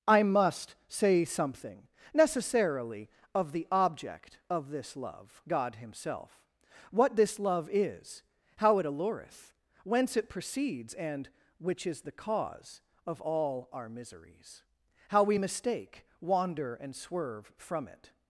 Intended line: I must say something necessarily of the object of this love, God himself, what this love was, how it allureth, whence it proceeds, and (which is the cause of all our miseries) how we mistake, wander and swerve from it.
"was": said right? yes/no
no